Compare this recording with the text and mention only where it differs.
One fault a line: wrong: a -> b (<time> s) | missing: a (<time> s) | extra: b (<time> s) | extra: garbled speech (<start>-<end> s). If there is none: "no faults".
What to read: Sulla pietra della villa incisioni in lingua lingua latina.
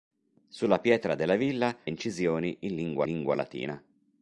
no faults